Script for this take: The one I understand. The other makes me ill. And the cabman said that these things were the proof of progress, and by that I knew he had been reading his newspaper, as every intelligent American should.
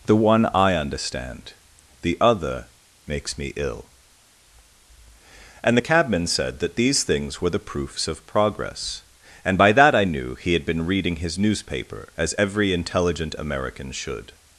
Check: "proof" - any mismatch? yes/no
yes